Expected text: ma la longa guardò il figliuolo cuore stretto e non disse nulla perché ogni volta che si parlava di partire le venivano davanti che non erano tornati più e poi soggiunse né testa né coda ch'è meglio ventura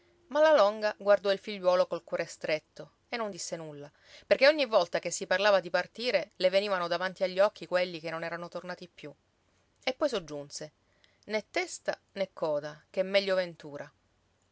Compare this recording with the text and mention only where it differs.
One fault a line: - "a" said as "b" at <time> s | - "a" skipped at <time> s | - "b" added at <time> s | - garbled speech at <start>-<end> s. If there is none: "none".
- "col" added at 1.9 s
- "agli occhi quelli" added at 7.2 s